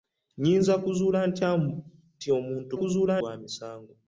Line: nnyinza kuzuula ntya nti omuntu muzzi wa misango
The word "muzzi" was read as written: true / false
false